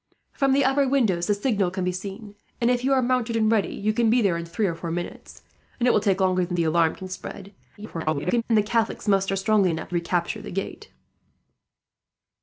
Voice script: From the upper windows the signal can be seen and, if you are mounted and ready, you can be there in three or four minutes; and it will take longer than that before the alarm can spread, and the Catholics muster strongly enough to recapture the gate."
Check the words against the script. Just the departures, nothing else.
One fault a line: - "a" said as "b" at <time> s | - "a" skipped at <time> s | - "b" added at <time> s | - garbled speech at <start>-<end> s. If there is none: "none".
- "that before" skipped at 6.6 s
- garbled speech at 7.8-8.4 s
- "to" skipped at 9.9 s